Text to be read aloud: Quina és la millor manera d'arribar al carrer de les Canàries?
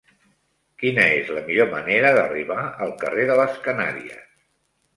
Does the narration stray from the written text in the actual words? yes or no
no